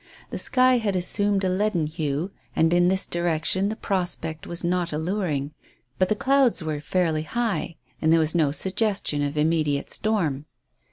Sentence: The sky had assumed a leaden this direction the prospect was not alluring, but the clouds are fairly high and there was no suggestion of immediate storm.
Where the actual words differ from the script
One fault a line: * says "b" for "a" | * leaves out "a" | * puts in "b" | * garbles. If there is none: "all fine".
* puts in "hue and in"
* says "were" for "are"